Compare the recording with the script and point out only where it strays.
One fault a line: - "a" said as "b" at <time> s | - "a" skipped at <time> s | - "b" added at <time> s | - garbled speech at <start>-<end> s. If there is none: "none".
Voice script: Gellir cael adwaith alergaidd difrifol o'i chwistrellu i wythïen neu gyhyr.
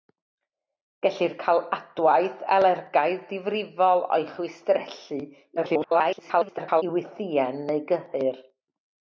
- garbled speech at 5.6-6.8 s